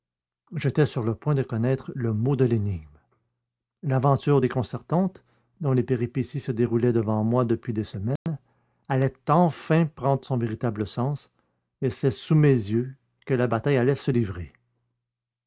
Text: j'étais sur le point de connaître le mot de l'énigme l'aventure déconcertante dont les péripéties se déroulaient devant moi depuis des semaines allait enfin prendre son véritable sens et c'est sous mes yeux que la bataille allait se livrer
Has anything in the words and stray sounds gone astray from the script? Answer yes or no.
yes